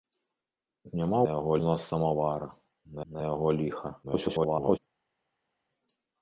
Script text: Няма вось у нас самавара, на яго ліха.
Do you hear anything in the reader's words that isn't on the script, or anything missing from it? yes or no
yes